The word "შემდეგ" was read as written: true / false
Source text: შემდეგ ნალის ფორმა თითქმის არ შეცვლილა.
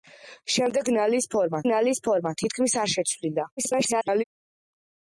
true